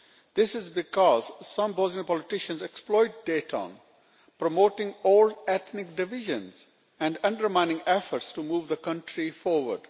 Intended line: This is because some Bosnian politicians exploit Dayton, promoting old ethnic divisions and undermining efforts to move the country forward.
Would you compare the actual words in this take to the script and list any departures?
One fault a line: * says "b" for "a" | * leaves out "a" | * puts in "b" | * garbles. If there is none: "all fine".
all fine